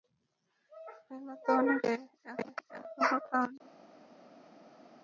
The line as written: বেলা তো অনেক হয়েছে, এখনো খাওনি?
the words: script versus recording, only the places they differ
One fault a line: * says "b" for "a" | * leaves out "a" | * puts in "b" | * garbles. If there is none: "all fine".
all fine